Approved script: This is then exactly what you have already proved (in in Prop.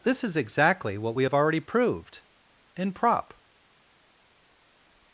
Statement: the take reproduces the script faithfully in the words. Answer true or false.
false